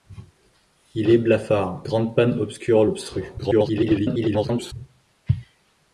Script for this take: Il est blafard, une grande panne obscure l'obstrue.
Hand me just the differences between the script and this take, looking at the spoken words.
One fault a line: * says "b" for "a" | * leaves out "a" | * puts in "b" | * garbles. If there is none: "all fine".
* leaves out "une"
* garbles